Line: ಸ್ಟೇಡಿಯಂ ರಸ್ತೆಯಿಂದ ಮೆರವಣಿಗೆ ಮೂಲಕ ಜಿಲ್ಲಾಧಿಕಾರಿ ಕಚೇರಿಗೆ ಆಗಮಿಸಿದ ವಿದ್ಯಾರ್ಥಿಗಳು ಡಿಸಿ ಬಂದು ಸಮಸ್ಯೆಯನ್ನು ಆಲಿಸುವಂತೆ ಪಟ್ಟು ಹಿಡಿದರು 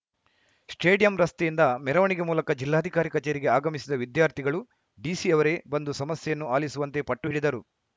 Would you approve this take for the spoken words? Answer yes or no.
no